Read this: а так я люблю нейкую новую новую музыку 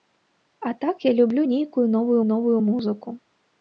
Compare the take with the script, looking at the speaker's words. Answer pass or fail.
pass